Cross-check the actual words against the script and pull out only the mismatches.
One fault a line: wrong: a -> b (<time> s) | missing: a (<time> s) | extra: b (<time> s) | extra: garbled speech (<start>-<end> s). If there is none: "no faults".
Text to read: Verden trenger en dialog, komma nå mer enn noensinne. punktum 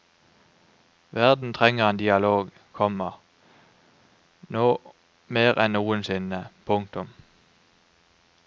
no faults